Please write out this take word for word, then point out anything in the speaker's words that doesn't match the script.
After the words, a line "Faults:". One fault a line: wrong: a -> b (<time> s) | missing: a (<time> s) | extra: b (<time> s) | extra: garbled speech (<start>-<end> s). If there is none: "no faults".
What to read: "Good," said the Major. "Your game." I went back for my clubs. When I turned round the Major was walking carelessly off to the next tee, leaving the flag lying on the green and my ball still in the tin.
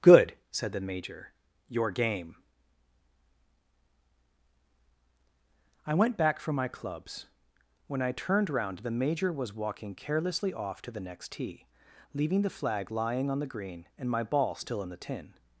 "Good," said the Major. "Your game." I went back for my clubs. When I turned round the Major was walking carelessly off to the next tee, leaving the flag lying on the green and my ball still in the tin.
Faults:
no faults